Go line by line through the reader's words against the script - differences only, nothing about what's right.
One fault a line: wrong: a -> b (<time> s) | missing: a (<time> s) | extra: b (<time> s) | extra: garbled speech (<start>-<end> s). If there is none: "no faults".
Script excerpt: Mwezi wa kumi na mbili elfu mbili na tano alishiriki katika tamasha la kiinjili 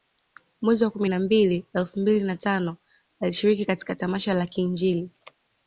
no faults